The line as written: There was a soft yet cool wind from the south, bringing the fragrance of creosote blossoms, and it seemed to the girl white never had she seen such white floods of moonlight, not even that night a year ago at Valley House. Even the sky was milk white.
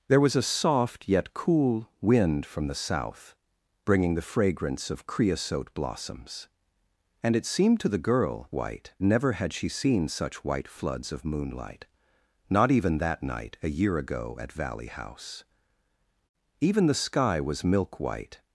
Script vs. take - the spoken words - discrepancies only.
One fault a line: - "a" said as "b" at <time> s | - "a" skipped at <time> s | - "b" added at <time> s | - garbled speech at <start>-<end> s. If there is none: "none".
none